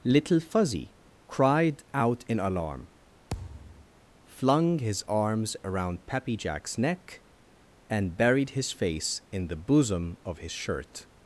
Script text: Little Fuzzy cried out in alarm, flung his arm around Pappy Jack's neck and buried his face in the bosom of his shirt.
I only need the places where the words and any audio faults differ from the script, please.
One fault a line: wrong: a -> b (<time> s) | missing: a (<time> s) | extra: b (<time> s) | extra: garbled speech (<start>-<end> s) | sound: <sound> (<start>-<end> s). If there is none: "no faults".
sound: thud (3.3-3.9 s)
wrong: arm -> arms (5.1 s)